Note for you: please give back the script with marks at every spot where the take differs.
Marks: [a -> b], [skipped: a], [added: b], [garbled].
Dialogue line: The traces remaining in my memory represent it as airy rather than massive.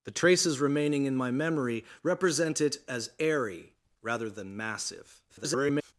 The traces remaining in my memory represent it as airy rather than massive. [garbled]